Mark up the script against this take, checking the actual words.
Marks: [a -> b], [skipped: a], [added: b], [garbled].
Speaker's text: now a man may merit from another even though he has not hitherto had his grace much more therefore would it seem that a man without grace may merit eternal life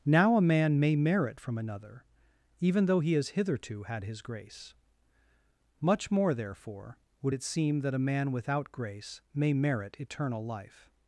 now a man may merit from another even though he has [skipped: not] hitherto had his grace much more therefore would it seem that a man without grace may merit eternal life